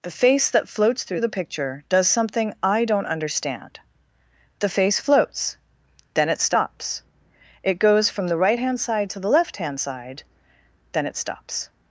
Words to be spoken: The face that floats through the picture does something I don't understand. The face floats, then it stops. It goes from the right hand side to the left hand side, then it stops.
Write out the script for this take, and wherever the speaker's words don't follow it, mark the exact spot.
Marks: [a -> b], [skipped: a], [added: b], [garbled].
The face that floats through the picture does something I don't understand. The face floats, then it stops. It goes from the right hand side to the left hand side, then it stops.